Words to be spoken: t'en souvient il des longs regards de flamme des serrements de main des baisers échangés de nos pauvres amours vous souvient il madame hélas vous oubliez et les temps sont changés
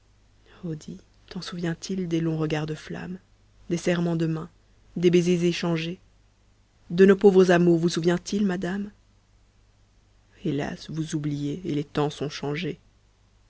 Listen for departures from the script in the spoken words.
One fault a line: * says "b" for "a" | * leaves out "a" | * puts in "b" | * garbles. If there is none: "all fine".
all fine